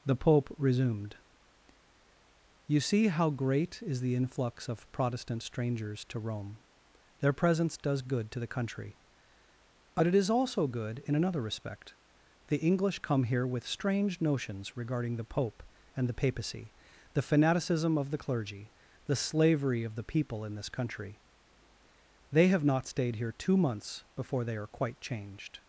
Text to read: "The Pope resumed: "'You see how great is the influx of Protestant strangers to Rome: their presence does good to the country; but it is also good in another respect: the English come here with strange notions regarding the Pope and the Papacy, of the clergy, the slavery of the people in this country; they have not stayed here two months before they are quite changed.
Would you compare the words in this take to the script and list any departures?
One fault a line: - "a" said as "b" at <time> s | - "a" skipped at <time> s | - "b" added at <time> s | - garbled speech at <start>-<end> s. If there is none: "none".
- "the fanaticism" added at 17.1 s